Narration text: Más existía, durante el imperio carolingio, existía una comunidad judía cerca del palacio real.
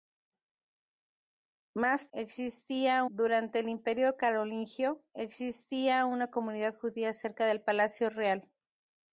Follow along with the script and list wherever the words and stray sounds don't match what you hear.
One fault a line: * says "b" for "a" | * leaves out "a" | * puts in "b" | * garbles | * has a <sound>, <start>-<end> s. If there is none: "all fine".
all fine